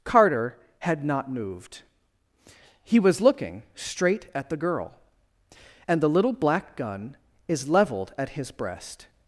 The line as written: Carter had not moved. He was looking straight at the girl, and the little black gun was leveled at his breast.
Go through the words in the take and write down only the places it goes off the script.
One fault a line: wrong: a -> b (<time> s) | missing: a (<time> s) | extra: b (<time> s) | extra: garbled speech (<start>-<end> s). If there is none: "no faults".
wrong: was -> is (7.5 s)